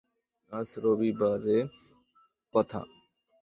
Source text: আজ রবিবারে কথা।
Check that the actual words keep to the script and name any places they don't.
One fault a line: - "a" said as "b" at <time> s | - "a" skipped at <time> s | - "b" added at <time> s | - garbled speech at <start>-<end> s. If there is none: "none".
none